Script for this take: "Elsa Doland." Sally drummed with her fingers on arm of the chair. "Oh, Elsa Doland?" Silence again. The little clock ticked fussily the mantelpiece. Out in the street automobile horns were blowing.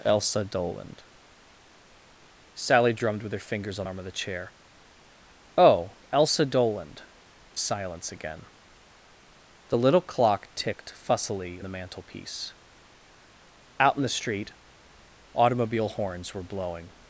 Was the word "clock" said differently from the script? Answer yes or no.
no